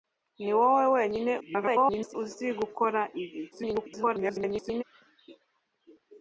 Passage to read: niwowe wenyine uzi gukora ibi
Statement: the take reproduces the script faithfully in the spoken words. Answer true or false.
false